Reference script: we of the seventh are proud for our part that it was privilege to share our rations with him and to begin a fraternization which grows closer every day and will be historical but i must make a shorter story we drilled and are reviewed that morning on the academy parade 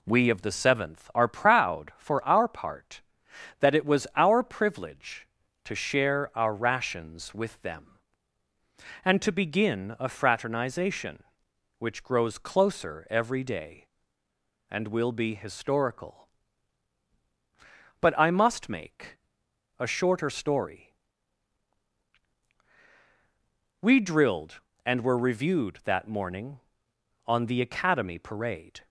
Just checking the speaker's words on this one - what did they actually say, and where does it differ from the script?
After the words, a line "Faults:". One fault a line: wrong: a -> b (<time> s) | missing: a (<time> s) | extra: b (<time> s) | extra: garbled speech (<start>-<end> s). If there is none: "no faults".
we of the seventh are proud for our part that it was our privilege to share our rations with them and to begin a fraternization which grows closer every day and will be historical but i must make a shorter story we drilled and were reviewed that morning on the academy parade
Faults:
extra: our (4.2 s)
wrong: him -> them (7.6 s)
wrong: are -> were (25.0 s)